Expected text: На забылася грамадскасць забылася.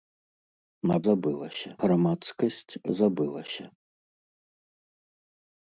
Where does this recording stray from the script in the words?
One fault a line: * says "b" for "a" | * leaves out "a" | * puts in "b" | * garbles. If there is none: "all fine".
all fine